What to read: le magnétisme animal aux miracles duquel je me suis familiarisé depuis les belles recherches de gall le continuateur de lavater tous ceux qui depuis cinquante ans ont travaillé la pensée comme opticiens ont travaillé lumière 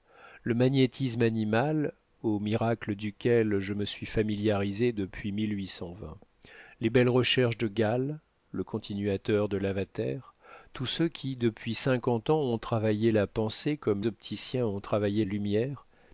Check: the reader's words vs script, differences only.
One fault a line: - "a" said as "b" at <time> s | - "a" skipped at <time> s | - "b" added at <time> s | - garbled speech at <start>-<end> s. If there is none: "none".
none